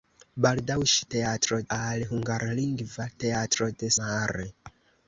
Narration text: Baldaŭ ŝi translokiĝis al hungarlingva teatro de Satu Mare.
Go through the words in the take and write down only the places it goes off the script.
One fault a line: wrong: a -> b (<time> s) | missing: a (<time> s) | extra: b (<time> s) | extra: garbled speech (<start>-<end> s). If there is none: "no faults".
wrong: translokiĝis -> teatro (1.2 s)
missing: Satu (3.9 s)